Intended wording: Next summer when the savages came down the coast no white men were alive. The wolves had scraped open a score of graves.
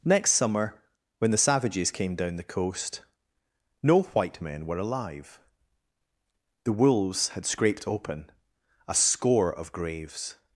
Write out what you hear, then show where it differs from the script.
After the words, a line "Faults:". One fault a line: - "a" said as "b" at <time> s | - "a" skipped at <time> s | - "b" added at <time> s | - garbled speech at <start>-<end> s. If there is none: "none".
Next summer when the savages came down the coast no white men were alive. The wolves had scraped open a score of graves.
Faults:
none